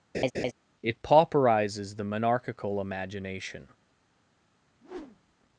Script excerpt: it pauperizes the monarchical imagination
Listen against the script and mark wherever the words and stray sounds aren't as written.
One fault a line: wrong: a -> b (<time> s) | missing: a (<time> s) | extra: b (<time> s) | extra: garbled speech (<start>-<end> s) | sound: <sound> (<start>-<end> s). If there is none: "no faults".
sound: laugh (0.1-0.5 s)
sound: whoosh (4.8-5.4 s)